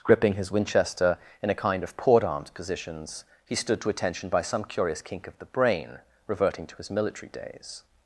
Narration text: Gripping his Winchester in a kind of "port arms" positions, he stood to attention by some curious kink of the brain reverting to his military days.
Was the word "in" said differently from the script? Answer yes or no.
no